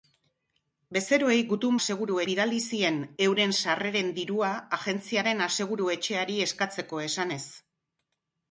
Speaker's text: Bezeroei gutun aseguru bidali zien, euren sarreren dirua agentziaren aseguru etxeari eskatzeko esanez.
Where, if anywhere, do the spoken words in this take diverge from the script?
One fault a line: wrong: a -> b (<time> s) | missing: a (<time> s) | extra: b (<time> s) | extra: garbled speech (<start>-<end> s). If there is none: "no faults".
no faults